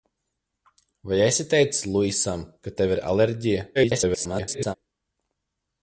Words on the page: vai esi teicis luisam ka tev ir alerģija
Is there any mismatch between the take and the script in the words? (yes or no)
yes